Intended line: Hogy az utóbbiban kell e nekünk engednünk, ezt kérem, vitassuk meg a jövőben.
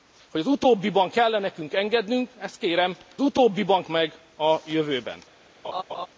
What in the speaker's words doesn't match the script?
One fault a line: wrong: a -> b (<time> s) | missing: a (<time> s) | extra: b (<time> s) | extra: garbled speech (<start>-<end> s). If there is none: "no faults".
wrong: vitassuk -> utóbbiban (3.2 s)